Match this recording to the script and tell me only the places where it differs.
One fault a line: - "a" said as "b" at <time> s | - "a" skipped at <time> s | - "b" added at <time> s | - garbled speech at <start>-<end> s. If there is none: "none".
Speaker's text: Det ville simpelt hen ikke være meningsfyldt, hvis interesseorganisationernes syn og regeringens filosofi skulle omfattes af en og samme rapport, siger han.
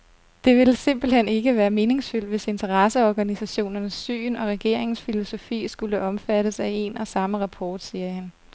none